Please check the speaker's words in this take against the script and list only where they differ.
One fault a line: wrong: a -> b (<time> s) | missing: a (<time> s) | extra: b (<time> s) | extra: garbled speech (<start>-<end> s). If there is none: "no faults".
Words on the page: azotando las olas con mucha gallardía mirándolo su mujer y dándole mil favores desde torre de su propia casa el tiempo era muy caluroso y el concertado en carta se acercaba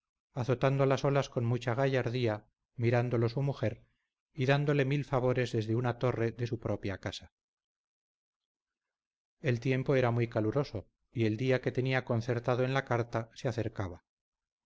extra: una (5.8 s)
extra: día que tenía (11.4 s)
extra: la (12.7 s)